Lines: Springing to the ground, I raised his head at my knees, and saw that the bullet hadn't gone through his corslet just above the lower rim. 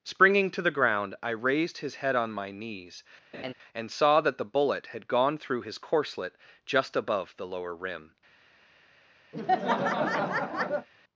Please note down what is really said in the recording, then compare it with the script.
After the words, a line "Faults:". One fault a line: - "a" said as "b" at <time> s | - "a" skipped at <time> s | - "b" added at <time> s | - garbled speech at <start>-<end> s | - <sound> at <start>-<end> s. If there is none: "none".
Springing to the ground, I raised his head on my knees, and saw that the bullet had gone through his corslet just above the lower rim.
Faults:
- "at" said as "on" at 2.1 s
- laugh at 3.3-3.5 s
- "hadn't" said as "had" at 4.9 s
- laugh at 9.3-10.9 s